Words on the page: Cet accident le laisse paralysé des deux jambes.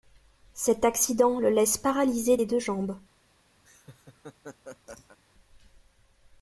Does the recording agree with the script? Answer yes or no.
yes